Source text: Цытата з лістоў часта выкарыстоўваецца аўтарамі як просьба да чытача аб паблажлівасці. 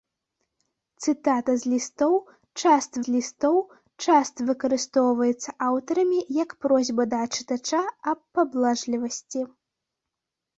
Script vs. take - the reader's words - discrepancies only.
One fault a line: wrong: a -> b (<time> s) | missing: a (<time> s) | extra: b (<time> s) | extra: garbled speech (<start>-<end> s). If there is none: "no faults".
extra: з лістоў часта (3.1 s)